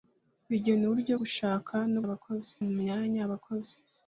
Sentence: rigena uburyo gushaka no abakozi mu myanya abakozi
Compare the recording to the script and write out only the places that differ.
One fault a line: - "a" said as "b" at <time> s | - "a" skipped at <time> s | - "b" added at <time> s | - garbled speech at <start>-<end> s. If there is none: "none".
none